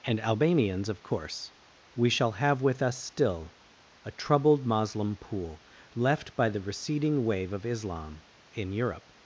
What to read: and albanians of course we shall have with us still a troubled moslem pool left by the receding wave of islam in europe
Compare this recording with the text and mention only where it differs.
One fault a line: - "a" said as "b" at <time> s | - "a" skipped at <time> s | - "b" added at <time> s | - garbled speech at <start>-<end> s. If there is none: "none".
none